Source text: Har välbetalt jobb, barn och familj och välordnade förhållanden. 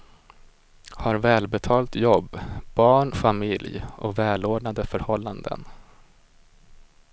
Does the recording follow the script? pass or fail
fail